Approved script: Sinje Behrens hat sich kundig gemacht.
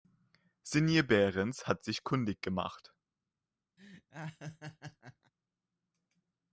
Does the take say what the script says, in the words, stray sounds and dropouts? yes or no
no